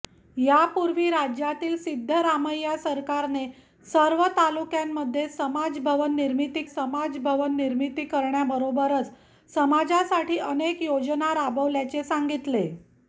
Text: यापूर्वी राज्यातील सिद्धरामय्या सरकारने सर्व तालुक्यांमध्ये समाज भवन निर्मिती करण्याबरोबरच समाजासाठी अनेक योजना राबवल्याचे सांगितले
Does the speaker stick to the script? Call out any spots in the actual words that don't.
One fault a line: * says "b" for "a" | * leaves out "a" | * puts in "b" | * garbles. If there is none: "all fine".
* puts in "समाज भवन निर्मिती"